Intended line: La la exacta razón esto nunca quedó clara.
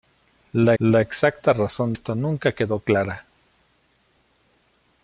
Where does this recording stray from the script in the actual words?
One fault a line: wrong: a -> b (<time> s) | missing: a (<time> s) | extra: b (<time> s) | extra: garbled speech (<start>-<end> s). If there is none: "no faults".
no faults